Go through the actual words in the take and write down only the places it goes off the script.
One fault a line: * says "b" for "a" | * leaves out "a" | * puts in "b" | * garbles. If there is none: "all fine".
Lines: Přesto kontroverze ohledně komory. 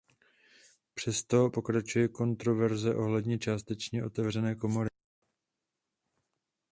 * puts in "pokračuje"
* puts in "částečně otevřené"